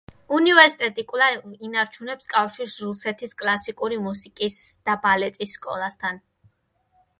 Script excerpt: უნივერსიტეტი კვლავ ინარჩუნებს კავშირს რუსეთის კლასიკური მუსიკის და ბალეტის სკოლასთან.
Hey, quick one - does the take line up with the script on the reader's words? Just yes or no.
yes